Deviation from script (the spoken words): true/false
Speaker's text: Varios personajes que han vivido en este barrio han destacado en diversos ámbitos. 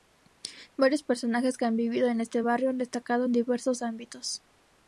false